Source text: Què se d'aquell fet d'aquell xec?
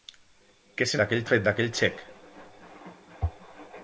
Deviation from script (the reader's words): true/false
false